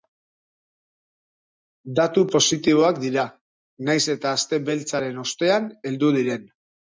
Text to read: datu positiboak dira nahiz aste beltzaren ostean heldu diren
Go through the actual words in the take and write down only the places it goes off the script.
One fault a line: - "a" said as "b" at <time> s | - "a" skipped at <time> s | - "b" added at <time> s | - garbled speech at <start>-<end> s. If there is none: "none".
- "eta" added at 4.2 s